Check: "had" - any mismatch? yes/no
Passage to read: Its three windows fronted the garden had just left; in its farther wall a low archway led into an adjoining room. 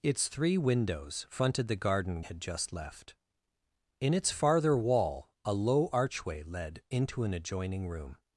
no